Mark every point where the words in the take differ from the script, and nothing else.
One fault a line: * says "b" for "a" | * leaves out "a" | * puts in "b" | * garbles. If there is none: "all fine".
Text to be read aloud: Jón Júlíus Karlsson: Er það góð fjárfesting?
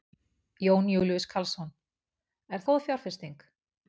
* leaves out "það"